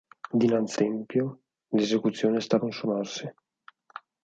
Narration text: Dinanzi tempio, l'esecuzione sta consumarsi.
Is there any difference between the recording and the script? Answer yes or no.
no